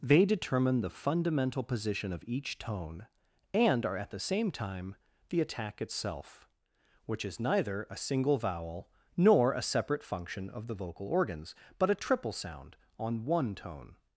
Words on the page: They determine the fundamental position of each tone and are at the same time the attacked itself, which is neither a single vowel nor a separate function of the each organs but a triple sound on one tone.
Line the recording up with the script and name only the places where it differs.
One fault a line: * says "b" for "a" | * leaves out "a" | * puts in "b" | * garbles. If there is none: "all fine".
* says "attack" for "attacked"
* says "vocal" for "each"